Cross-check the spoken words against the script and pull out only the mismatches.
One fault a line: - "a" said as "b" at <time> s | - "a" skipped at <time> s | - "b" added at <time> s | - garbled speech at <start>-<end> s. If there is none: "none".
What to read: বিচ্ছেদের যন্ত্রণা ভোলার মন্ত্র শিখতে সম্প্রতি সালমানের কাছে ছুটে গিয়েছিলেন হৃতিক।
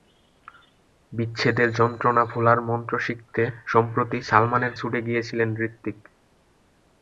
- "কাছে" skipped at 4.7 s